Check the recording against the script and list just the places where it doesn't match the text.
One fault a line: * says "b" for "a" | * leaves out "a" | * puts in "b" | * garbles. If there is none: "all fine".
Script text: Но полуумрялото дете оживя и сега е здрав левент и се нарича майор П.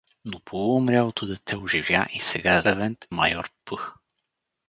* leaves out "здрав"
* leaves out "се нарича"